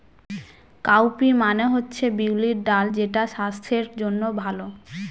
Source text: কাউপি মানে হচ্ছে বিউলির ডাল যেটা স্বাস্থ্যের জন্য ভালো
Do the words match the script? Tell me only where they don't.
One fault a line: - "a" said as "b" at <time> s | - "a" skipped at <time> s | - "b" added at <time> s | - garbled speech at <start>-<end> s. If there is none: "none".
none